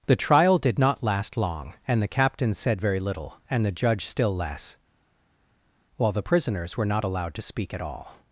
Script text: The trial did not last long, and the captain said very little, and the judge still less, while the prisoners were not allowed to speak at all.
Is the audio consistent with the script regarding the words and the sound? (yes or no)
yes